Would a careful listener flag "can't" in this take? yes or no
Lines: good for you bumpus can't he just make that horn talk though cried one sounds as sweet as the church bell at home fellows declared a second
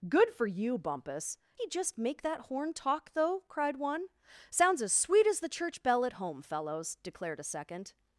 yes